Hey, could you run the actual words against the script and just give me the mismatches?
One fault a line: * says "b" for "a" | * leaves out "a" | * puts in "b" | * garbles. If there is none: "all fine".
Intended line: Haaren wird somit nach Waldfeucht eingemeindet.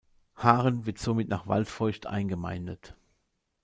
all fine